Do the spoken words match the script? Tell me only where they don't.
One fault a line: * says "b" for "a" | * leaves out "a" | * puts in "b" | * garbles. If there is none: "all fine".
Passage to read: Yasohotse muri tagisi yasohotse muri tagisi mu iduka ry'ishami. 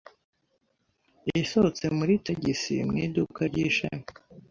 * leaves out "yasohotse muri tagisi"